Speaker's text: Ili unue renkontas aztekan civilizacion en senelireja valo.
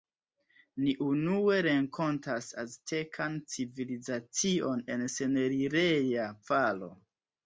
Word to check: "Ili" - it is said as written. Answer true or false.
false